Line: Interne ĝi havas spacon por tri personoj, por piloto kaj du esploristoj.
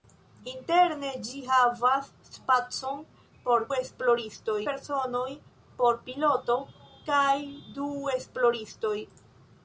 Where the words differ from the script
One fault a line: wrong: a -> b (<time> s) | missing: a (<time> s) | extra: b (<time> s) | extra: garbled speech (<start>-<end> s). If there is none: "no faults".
wrong: tri -> esploristoj (3.8 s)